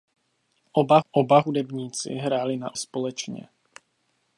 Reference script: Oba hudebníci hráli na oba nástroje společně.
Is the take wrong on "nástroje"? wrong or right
wrong